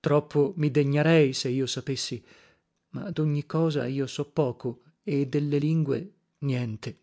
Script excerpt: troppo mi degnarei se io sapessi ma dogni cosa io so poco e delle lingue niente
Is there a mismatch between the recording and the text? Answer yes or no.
no